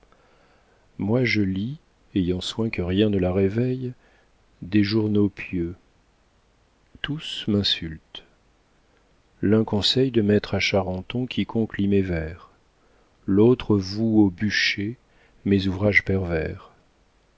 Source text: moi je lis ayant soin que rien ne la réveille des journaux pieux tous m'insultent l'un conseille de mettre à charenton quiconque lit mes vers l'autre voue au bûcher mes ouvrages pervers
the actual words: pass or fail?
pass